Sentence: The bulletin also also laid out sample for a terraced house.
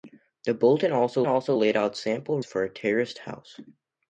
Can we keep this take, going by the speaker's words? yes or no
yes